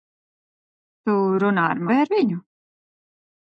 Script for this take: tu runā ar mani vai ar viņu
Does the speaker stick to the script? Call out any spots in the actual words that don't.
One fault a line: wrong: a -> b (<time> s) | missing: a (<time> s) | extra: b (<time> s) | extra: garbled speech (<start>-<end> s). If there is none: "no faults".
missing: mani (1.9 s)